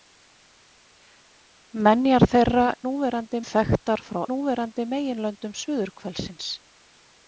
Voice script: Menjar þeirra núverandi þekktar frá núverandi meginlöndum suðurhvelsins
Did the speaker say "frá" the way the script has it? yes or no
yes